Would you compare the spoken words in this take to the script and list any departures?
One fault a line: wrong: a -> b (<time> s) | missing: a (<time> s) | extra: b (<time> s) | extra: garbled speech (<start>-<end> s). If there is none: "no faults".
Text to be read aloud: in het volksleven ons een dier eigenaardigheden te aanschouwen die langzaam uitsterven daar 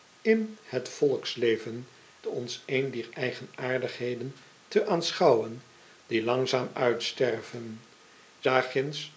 no faults